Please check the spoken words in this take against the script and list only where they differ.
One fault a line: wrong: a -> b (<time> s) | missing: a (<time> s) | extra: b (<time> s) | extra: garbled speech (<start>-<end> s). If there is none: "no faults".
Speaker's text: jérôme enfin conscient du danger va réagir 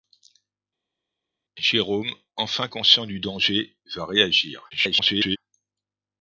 extra: garbled speech (4.7-5.4 s)